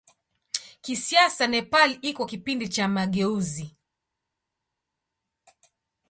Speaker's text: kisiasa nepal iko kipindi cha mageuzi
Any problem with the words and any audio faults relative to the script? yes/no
no